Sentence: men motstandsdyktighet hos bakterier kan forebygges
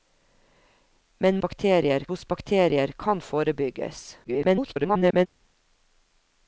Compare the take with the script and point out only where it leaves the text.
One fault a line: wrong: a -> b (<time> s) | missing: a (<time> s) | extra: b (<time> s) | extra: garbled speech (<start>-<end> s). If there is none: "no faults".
wrong: motstandsdyktighet -> bakterier (1.4 s)
extra: garbled speech (4.2-5.3 s)